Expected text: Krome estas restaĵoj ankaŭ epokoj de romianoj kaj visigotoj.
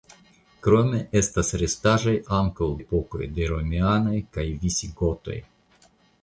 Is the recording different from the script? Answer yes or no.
no